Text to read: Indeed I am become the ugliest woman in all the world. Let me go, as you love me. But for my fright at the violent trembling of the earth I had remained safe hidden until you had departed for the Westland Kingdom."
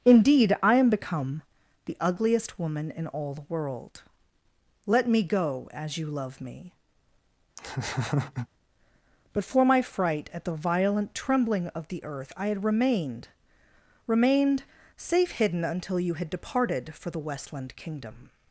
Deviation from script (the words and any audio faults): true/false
true